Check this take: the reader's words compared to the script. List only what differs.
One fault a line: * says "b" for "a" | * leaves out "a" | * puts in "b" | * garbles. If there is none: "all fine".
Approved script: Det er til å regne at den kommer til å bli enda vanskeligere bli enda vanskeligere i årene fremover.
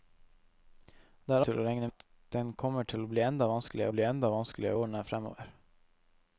all fine